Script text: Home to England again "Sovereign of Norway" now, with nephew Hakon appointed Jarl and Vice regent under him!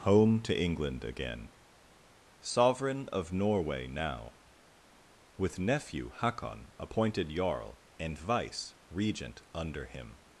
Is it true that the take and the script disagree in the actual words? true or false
false